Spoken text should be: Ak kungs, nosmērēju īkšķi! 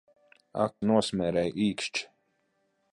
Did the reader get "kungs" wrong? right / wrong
wrong